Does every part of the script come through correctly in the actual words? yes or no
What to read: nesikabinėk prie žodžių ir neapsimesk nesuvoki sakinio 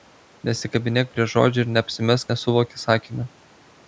yes